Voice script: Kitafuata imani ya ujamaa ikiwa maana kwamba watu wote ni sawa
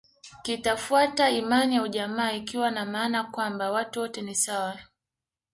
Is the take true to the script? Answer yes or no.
no